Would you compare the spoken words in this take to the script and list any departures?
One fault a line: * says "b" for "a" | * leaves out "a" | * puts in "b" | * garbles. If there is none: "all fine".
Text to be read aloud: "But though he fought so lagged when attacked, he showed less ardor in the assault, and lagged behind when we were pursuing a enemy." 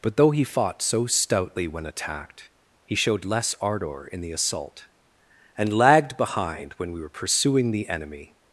* says "stoutly" for "lagged"
* says "the" for "a"